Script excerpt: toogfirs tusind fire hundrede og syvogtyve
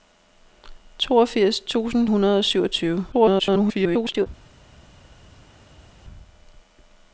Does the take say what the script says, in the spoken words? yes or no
no